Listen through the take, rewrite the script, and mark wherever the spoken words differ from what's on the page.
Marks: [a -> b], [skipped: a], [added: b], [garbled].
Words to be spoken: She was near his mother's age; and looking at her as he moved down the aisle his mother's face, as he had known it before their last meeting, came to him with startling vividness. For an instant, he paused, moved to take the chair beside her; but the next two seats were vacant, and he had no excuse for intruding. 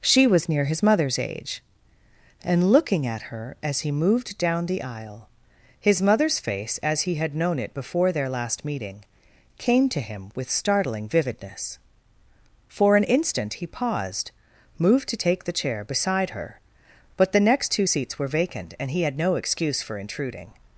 She was near his mother's age; and looking at her as he moved down the aisle his mother's face, as he had known it before their last meeting, came to him with startling vividness. For an instant, he paused, moved to take the chair beside her; but the next two seats were vacant, and he had no excuse for intruding.